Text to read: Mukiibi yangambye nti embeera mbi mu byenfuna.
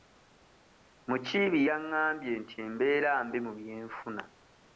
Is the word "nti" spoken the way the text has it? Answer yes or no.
yes